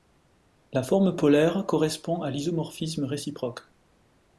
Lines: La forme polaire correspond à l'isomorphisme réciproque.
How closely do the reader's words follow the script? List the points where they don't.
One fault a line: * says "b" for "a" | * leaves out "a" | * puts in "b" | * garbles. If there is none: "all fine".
all fine